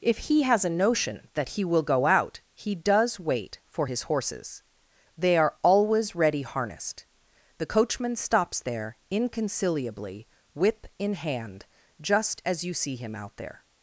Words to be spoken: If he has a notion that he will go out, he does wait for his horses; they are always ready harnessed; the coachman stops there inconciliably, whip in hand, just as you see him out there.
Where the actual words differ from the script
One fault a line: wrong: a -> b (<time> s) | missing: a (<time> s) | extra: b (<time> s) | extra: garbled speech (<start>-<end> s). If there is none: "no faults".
no faults